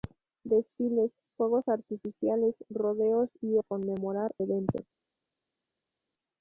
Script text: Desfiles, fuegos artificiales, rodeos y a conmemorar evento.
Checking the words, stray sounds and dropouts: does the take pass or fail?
pass